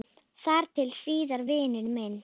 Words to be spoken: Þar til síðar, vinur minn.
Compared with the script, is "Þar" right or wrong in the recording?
right